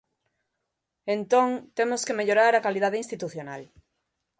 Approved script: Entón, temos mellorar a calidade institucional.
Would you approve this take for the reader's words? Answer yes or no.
no